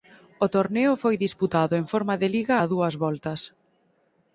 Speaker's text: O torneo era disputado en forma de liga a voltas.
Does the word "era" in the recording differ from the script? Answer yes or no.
yes